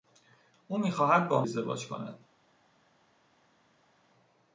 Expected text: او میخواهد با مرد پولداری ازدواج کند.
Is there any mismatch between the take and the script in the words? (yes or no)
yes